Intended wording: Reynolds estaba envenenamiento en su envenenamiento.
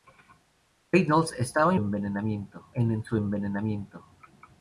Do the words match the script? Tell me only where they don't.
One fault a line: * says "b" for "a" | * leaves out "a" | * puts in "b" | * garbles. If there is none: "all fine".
all fine